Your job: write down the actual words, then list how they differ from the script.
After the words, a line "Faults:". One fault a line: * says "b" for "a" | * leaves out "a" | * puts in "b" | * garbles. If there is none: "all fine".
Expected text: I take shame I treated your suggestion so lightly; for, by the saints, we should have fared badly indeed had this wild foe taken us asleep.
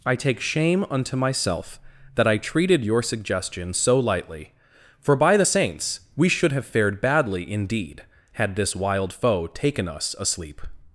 I take shame unto myself that I treated your suggestion so lightly; for, by the saints, we should have fared badly indeed had this wild foe taken us asleep.
Faults:
* puts in "unto myself that"